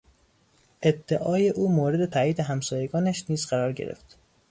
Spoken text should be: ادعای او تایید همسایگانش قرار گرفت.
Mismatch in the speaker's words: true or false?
true